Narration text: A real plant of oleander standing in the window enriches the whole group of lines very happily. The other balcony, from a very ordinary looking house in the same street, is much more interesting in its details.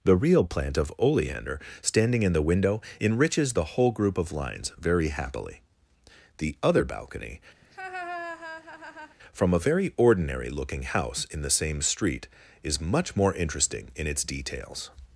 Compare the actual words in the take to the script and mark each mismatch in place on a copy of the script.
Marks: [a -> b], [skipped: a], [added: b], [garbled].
[A -> The] real plant of oleander standing in the window enriches the whole group of lines very happily. The other balcony, from a very ordinary looking house in the same street, is much more interesting in its details.